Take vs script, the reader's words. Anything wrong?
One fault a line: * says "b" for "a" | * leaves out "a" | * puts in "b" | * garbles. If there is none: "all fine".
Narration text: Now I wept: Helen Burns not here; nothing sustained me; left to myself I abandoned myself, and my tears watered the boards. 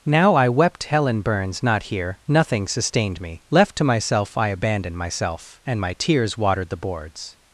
all fine